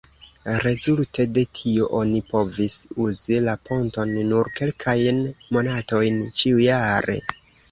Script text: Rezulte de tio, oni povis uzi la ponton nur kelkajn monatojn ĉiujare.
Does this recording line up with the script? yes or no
yes